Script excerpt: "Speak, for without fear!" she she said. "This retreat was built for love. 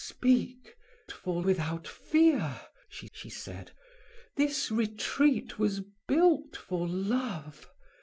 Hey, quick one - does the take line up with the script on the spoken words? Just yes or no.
yes